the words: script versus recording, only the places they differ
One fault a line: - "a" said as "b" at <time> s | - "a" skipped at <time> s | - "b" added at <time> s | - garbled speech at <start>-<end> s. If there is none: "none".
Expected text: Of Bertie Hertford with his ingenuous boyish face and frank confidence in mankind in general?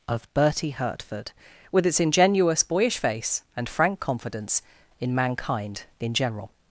- "his" said as "its" at 1.9 s